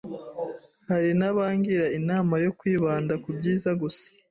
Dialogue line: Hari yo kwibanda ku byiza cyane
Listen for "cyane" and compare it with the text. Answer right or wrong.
wrong